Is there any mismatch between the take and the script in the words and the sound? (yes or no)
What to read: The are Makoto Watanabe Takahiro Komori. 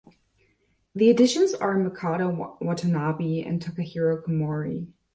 yes